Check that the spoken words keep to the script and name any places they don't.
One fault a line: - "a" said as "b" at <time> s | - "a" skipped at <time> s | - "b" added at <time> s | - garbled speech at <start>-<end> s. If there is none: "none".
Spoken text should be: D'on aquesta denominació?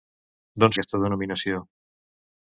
none